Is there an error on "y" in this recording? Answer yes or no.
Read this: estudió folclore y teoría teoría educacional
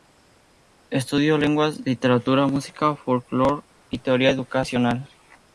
no